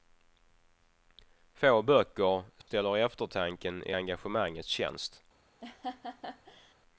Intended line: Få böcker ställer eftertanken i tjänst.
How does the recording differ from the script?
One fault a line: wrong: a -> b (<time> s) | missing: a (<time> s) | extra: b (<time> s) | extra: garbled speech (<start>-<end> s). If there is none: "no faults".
extra: engagemangets (3.9 s)